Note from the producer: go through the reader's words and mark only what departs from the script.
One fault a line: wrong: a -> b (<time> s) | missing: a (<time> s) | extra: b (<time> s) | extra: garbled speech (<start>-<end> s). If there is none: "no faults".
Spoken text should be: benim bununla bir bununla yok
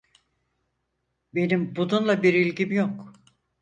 wrong: bununla -> ilgim (2.3 s)